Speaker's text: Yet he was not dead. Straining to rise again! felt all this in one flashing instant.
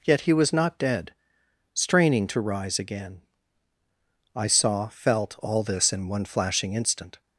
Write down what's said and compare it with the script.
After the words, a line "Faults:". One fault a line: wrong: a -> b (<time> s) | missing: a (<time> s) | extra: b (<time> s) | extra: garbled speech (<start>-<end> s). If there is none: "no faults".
Yet he was not dead. Straining to rise again! I saw, felt all this in one flashing instant.
Faults:
extra: I saw (4.3 s)